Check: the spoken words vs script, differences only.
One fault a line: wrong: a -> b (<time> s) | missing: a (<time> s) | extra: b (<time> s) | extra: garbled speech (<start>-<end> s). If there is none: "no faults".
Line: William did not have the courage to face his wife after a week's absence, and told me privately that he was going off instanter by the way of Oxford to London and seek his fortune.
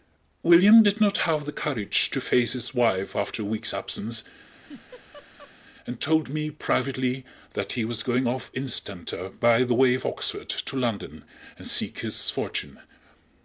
no faults